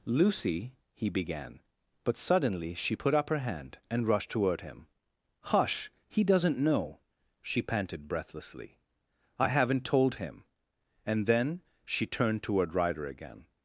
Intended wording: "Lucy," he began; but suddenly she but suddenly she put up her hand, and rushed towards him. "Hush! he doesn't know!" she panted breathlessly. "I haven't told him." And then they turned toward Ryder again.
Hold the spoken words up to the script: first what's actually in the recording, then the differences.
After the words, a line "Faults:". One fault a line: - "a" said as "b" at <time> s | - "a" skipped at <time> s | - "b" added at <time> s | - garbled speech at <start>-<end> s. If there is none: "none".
"Lucy," he began; but suddenly she put up her hand, and rushed toward him. "Hush! he doesn't know!" she panted breathlessly. "I haven't told him." And then she turned toward Ryder again.
Faults:
- "but suddenly she" skipped at 3.0 s
- "towards" said as "toward" at 4.3 s
- "they" said as "she" at 11.8 s